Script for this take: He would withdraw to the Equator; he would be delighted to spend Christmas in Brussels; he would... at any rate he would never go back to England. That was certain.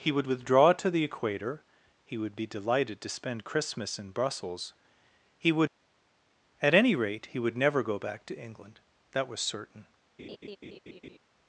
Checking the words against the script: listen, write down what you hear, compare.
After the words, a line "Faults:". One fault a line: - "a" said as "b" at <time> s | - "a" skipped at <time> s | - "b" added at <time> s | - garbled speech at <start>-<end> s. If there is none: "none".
He would withdraw to the Equator; he would be delighted to spend Christmas in Brussels; he would... at any rate he would never go back to England. That was certain.
Faults:
none